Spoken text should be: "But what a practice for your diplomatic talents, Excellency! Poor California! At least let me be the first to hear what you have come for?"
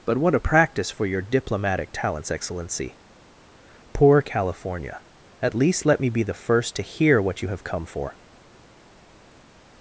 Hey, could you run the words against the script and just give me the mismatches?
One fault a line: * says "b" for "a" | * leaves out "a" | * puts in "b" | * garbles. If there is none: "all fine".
all fine